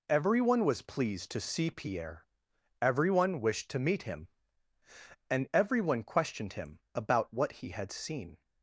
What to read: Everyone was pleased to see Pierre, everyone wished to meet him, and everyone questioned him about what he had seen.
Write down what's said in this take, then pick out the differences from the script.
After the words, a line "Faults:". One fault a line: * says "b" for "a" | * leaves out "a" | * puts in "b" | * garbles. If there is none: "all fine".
Everyone was pleased to see Pierre, everyone wished to meet him, and everyone questioned him about what he had seen.
Faults:
all fine